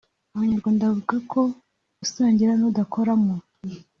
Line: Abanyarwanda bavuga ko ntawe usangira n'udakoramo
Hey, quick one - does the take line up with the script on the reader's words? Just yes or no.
no